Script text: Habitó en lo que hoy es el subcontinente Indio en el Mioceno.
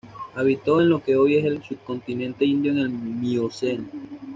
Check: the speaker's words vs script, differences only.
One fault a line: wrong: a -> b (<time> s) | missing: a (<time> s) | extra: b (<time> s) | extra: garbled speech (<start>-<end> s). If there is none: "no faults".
no faults